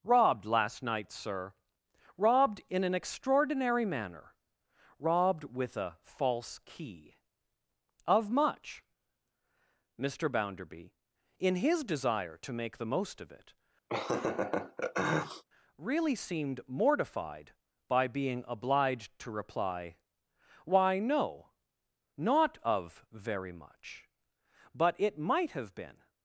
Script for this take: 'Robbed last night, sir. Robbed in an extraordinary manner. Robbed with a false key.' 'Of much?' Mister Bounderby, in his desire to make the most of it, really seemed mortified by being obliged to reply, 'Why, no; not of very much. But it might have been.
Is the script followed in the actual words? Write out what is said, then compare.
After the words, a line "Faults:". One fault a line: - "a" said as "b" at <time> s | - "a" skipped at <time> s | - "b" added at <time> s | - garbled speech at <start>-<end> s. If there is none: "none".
'Robbed last night, sir. Robbed in an extraordinary manner. Robbed with a false key.' 'Of much?' Mister Bounderby, in his desire to make the most of it, really seemed mortified by being obliged to reply, 'Why, no; not of very much. But it might have been.
Faults:
none